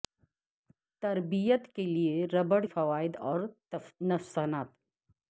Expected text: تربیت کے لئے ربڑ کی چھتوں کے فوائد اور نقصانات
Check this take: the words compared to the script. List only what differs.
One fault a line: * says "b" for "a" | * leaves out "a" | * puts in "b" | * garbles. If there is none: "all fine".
* leaves out "کی چھتوں کے"